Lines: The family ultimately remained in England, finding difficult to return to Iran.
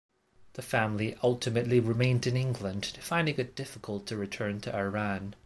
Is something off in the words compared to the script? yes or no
yes